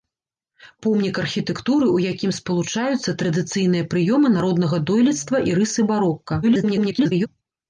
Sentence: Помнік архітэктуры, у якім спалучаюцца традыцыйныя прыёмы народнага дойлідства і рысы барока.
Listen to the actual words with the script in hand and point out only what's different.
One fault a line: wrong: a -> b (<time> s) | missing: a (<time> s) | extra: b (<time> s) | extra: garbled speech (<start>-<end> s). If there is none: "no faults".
extra: garbled speech (6.4-7.3 s)